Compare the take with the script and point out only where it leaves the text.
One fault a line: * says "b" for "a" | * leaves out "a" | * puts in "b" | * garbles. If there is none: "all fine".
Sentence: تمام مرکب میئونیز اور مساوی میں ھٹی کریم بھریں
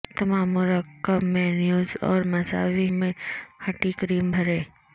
all fine